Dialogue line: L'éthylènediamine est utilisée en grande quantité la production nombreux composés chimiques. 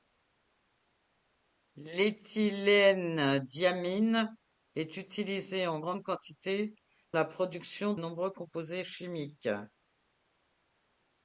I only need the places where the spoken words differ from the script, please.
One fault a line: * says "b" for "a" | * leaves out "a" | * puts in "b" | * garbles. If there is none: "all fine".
all fine